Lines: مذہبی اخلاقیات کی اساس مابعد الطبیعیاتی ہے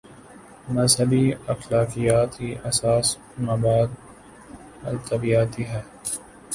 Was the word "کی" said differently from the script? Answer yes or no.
no